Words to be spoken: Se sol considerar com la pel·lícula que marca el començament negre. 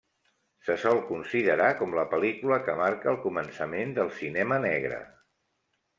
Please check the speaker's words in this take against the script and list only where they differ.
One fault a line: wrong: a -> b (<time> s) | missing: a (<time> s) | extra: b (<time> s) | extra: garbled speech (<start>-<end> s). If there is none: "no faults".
extra: del cinema (4.0 s)